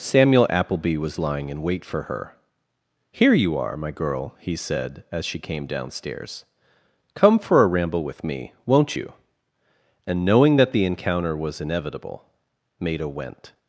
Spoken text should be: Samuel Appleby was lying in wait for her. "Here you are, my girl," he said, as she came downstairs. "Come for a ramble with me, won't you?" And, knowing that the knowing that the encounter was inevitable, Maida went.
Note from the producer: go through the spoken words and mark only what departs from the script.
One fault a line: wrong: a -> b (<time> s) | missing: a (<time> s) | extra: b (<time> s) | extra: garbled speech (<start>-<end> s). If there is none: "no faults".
missing: knowing that the (10.8 s)